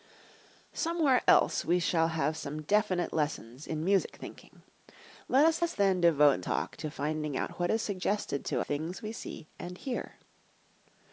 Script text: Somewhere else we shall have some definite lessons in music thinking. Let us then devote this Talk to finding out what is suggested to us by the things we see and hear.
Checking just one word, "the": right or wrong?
wrong